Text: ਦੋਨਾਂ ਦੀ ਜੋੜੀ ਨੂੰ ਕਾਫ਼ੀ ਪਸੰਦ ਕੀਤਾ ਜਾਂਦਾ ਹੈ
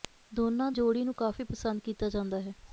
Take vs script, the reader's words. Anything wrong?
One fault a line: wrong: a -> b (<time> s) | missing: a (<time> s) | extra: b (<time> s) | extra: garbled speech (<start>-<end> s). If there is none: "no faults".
missing: ਦੀ (0.7 s)